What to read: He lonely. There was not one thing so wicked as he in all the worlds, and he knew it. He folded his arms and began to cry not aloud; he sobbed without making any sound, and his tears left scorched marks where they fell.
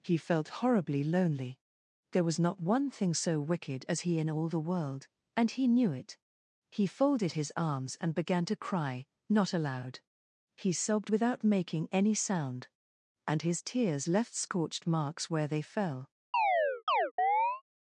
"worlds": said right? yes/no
no